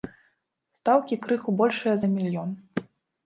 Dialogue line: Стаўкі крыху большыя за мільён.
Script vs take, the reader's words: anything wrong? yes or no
no